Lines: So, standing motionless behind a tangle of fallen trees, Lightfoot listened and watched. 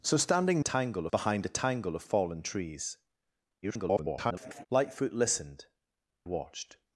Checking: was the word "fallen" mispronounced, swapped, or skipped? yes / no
no